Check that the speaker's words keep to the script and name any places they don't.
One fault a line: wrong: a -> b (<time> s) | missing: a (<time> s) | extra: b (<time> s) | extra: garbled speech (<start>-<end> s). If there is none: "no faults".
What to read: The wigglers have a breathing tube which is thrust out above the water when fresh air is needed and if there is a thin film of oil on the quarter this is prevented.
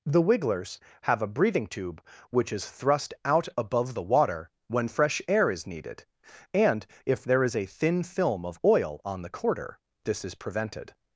no faults